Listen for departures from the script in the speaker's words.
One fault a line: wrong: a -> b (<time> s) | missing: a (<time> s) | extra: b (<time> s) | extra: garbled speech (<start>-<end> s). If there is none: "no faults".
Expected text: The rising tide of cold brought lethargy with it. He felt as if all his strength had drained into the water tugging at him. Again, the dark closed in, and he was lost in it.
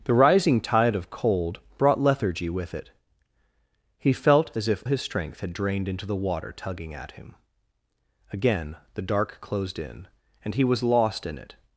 missing: all (4.8 s)